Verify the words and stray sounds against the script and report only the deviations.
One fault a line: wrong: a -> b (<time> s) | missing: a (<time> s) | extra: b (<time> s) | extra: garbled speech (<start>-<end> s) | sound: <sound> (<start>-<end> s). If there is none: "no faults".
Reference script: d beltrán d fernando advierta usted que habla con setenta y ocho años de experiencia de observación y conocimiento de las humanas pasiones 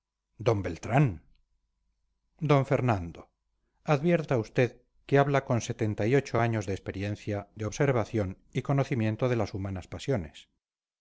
no faults